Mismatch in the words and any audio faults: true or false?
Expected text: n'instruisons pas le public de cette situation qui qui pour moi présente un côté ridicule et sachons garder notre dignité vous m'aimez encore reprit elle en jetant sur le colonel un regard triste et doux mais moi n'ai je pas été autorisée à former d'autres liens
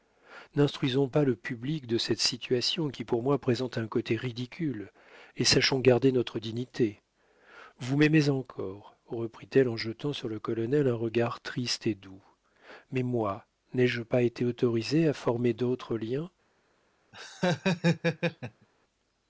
true